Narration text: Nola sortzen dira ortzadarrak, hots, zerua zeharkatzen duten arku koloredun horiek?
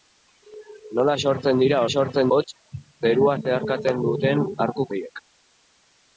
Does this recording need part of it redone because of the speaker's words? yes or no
yes